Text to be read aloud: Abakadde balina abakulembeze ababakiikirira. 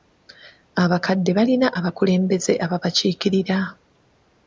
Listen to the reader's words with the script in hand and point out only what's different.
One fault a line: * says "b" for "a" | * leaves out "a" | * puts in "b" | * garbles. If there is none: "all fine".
all fine